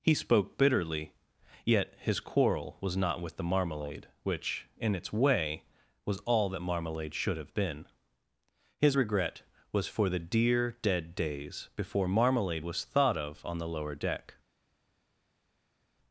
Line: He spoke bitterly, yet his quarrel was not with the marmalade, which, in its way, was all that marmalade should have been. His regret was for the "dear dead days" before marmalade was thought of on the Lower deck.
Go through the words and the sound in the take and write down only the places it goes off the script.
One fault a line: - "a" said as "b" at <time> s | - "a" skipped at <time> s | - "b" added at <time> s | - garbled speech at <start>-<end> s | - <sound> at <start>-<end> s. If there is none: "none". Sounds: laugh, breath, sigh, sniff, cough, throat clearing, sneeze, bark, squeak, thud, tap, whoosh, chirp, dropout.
none